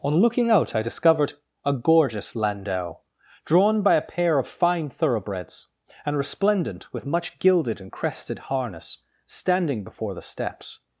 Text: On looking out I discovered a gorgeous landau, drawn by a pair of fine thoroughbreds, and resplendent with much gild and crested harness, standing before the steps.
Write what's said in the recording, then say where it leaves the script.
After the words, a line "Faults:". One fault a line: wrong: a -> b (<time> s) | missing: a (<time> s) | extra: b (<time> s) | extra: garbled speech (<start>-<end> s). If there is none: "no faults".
On looking out I discovered a gorgeous landau, drawn by a pair of fine thoroughbreds, and resplendent with much gilded and crested harness, standing before the steps.
Faults:
wrong: gild -> gilded (7.4 s)